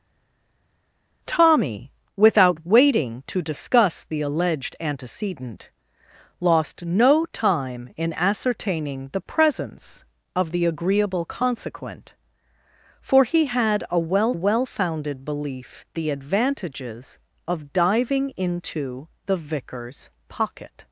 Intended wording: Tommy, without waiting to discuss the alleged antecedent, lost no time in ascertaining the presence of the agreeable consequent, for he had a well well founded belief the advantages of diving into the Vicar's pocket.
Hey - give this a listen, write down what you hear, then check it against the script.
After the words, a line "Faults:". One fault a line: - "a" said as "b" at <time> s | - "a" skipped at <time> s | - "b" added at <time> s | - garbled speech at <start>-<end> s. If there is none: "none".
Tommy, without waiting to discuss the alleged antecedent, lost no time in ascertaining the presence of the agreeable consequent, for he had a well well founded belief the advantages of diving into the Vicar's pocket.
Faults:
none